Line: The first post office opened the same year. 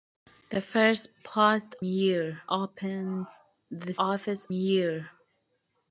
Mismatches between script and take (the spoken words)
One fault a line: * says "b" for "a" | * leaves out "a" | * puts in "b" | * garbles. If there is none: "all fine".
* says "year" for "office"
* says "office" for "same"